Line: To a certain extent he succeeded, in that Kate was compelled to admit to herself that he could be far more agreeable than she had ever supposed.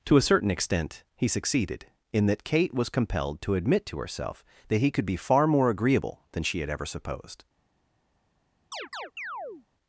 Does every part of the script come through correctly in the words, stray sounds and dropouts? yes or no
no